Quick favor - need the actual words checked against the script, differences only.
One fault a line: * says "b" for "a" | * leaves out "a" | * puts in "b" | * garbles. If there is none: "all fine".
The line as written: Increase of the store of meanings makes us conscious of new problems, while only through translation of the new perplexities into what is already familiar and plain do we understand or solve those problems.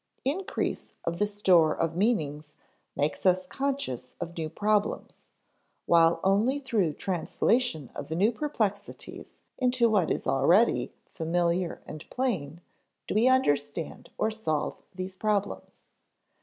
* says "these" for "those"